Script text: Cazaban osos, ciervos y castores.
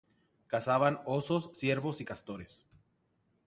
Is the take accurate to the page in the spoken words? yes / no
yes